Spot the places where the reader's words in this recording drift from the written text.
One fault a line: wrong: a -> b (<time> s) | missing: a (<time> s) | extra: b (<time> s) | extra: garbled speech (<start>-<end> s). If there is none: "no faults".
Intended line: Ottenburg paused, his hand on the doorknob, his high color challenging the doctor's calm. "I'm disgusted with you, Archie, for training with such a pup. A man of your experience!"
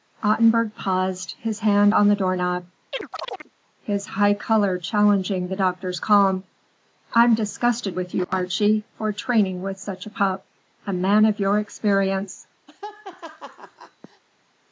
no faults